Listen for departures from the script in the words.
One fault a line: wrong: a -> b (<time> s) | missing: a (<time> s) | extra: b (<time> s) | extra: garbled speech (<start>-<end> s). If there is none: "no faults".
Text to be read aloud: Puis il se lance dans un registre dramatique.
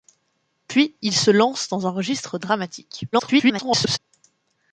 extra: garbled speech (3.1-4.0 s)